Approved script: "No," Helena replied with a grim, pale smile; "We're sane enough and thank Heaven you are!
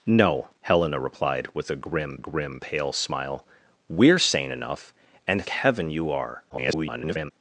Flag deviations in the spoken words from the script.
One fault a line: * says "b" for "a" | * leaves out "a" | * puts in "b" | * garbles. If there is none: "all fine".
* puts in "grim"
* leaves out "thank"
* garbles